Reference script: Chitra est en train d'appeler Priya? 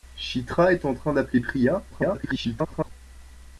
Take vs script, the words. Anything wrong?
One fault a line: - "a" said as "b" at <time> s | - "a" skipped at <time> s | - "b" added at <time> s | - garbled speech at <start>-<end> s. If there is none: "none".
- garbled speech at 1.9-2.9 s